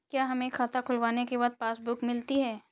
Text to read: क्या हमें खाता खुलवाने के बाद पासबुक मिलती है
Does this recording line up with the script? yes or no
yes